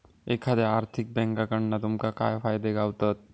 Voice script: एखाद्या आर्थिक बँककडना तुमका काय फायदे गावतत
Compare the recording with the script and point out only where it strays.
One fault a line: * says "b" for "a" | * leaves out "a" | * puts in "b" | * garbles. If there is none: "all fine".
all fine